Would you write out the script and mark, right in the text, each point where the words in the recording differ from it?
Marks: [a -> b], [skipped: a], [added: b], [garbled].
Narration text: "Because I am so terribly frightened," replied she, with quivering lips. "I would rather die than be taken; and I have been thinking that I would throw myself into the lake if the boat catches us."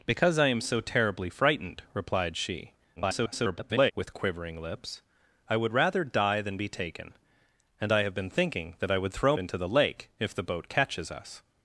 "Because I am so terribly frightened," replied she, [garbled] with quivering lips. "I would rather die than be taken; and I have been thinking that I would throw [skipped: myself] into the lake if the boat catches us."